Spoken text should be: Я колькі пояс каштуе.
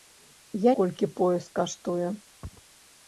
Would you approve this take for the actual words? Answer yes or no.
yes